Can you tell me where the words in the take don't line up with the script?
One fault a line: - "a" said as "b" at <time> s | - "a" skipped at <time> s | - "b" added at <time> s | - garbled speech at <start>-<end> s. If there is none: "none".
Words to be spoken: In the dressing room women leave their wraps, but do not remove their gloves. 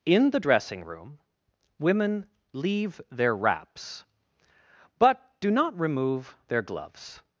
none